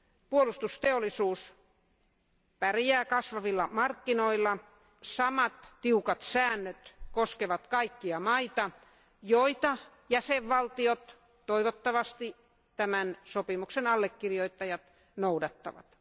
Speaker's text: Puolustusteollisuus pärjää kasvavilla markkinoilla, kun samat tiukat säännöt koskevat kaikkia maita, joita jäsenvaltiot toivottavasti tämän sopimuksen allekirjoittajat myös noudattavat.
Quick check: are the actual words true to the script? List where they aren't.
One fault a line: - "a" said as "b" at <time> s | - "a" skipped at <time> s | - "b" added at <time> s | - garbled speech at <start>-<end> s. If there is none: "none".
- "kun" skipped at 4.6 s
- "myös" skipped at 14.8 s